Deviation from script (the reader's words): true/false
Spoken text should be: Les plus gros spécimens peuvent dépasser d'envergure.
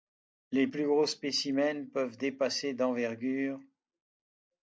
false